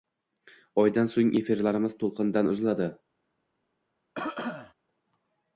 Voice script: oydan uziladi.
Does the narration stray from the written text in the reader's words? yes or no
yes